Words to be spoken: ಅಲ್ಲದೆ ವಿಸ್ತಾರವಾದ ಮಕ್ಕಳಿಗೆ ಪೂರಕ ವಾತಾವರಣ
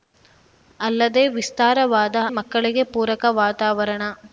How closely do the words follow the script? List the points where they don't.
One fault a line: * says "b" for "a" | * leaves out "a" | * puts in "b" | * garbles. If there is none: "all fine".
all fine